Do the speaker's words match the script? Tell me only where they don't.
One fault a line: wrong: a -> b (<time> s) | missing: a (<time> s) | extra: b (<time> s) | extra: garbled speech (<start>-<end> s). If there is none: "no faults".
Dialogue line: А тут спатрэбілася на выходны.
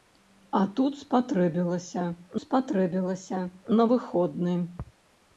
extra: спатрэбілася (2.4 s)